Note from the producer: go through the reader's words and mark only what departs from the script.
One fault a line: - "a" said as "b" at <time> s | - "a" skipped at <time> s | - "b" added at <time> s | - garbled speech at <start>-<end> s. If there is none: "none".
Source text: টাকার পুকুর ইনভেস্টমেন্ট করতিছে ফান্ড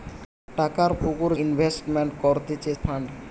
none